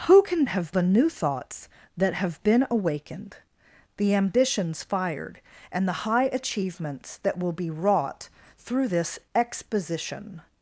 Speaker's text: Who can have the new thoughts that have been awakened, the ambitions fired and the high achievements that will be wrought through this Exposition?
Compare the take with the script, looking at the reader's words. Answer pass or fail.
pass